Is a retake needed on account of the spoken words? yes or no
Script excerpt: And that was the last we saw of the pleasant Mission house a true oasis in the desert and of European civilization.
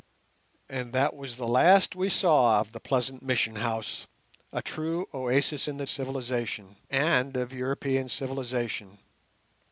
yes